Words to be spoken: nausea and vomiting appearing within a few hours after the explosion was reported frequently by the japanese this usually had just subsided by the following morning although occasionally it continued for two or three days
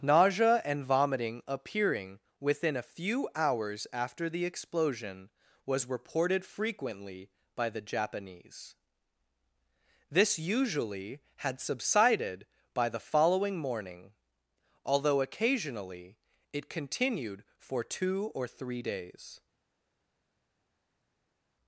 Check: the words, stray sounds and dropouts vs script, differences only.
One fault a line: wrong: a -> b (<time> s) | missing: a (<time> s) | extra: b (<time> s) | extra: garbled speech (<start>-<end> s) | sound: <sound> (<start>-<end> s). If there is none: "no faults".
missing: just (11.6 s)